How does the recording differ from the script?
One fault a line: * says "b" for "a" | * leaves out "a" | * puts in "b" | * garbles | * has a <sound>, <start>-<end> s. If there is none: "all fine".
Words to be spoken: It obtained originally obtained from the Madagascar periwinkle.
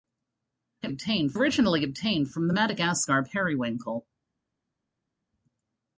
all fine